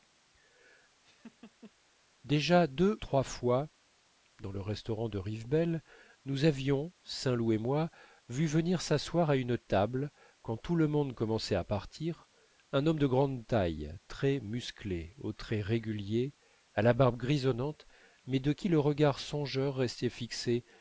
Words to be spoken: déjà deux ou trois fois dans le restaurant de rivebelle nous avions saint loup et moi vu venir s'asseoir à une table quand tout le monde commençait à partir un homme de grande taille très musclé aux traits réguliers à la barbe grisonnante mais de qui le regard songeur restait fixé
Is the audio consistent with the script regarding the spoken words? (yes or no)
no